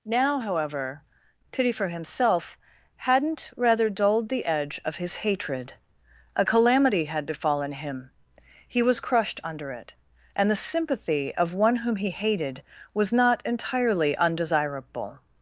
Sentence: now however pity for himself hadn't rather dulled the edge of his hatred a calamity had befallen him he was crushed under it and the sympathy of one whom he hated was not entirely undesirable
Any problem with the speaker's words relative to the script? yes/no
no